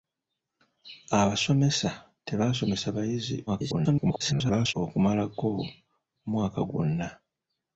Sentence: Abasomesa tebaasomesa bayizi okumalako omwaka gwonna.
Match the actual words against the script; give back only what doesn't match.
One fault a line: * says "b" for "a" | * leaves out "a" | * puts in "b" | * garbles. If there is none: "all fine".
* garbles